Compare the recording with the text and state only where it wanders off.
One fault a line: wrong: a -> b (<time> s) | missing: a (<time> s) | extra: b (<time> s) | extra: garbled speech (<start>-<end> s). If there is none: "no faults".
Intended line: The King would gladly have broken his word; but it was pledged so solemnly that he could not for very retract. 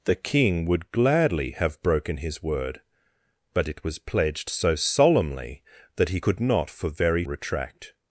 no faults